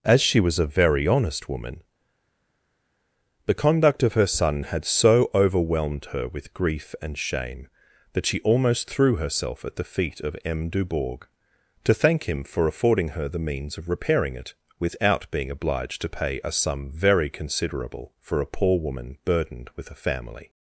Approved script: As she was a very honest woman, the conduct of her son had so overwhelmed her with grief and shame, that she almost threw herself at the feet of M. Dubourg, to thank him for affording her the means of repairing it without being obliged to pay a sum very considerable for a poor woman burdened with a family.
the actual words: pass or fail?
pass